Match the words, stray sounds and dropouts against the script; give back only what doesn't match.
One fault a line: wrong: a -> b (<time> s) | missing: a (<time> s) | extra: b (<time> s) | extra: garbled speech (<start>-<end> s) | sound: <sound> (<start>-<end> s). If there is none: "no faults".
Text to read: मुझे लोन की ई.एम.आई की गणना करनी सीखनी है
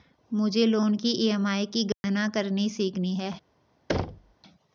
sound: dropout (1.9-2.0 s)
sound: thud (3.9-4.3 s)